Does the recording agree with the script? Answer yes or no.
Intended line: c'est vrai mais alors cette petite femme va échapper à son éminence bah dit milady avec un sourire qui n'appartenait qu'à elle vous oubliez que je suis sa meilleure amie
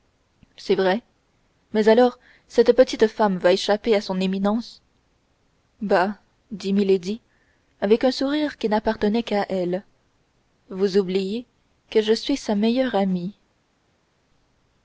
yes